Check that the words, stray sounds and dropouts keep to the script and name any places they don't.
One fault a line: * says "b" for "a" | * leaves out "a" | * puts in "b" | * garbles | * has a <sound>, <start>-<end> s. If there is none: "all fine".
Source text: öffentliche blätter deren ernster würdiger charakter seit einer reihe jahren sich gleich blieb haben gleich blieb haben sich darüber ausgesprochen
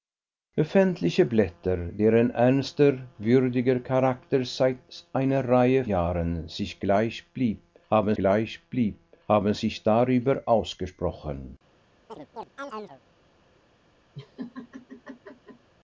* has a chirp, 12.1-13.0 s
* has a laugh, 14.2-15.7 s